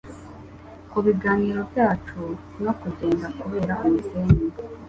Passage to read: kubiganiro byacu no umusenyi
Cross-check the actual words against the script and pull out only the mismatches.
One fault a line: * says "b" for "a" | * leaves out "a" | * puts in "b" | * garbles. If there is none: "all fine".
* puts in "kugenda kubera"